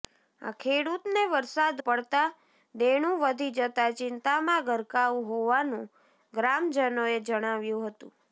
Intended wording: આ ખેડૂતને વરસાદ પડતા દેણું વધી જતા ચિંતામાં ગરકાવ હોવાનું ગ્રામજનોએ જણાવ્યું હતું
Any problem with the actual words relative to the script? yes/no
no